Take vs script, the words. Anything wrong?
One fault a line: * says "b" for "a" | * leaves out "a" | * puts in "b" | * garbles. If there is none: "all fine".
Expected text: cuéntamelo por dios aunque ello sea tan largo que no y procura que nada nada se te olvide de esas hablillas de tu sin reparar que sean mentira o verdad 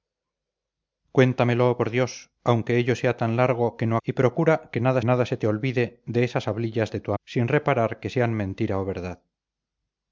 all fine